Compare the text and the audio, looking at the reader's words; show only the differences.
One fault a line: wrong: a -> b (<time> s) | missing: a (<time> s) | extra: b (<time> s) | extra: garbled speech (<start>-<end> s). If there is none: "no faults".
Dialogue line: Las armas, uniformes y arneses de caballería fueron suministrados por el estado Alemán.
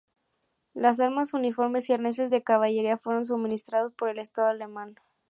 no faults